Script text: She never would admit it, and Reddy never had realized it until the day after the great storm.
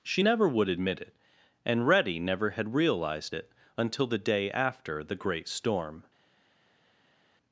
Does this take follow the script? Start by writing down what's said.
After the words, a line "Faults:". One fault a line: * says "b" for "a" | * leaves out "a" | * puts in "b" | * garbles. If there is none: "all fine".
She never would admit it, and Reddy never had realized it until the day after the great storm.
Faults:
all fine